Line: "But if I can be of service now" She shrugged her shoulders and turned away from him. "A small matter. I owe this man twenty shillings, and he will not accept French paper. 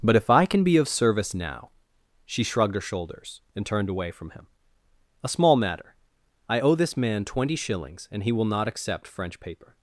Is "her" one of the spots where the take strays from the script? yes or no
no